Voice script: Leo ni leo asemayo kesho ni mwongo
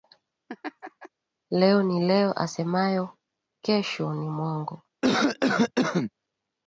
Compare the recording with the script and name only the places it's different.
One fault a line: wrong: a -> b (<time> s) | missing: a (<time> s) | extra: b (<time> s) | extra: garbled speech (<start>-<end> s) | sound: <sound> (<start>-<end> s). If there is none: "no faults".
sound: laugh (0.5-1.1 s)
sound: cough (5.0-6.1 s)